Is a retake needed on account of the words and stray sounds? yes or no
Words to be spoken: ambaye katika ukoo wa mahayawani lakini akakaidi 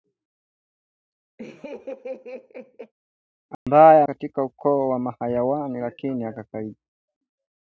yes